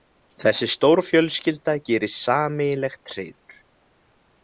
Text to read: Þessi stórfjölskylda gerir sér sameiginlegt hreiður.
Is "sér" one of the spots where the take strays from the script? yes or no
yes